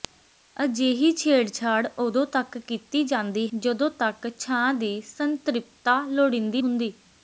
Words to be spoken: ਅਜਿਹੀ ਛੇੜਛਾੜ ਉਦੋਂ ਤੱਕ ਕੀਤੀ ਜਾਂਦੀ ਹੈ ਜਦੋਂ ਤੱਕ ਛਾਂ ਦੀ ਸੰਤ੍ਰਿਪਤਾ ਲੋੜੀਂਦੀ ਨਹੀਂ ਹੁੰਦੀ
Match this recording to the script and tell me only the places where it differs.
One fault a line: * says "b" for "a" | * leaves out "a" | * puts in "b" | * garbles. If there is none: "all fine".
* leaves out "ਹੈ"
* leaves out "ਨਹੀਂ"